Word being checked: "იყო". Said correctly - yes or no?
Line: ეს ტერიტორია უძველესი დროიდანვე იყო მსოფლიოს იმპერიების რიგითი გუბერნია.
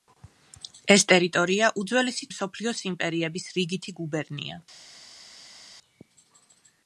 no